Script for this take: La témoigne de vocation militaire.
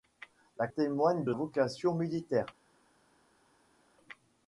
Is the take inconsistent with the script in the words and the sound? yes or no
no